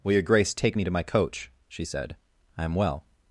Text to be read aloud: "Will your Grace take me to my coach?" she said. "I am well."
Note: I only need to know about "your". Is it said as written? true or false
true